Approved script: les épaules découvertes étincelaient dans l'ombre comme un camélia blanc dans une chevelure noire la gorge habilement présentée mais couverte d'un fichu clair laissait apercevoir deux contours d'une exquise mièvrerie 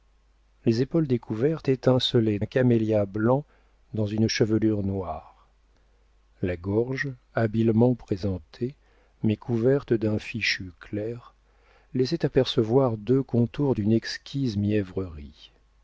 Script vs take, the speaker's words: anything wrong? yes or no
yes